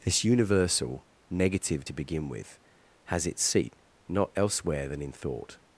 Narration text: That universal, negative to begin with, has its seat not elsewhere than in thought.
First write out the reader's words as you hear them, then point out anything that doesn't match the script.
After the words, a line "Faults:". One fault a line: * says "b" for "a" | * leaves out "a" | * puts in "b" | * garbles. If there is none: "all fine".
This universal, negative to begin with, has its seat not elsewhere than in thought.
Faults:
* says "This" for "That"